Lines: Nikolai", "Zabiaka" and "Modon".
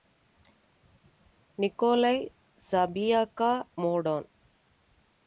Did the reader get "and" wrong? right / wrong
wrong